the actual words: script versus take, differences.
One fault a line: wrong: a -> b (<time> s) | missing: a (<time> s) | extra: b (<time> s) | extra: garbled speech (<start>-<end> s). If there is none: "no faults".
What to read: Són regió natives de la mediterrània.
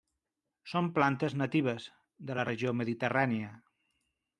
wrong: regió -> plantes (0.9 s)
extra: regió (2.5 s)